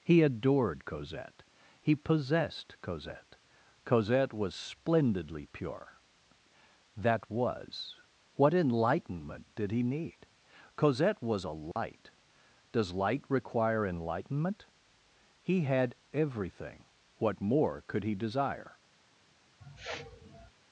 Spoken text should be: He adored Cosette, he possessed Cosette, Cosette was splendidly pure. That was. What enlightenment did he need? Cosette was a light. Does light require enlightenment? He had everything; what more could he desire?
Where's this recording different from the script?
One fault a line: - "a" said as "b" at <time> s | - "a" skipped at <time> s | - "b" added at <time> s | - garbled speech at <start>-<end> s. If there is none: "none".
none